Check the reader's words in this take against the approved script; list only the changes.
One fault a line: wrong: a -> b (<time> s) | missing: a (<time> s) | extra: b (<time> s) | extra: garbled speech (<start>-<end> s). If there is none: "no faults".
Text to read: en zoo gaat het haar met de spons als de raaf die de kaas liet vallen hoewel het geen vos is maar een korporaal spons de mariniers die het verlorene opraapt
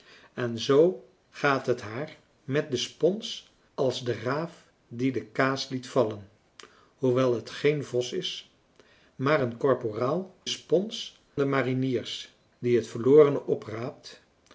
no faults